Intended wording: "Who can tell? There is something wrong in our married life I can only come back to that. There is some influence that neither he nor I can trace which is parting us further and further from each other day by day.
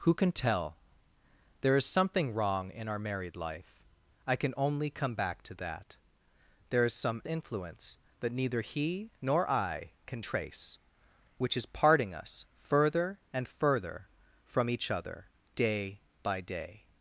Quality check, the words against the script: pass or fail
pass